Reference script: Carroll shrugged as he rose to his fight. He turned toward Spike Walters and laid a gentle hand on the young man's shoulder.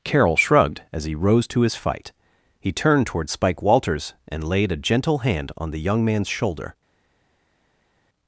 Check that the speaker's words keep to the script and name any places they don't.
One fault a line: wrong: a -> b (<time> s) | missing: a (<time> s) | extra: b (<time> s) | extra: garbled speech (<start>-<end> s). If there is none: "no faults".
no faults